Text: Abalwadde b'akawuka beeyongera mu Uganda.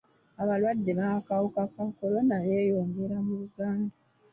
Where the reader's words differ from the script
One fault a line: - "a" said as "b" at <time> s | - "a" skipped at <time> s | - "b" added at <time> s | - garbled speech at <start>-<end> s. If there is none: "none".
- "ka kolona" added at 1.7 s